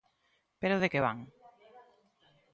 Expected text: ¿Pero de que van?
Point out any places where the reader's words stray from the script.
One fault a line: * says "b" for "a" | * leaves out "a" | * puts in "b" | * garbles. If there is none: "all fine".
all fine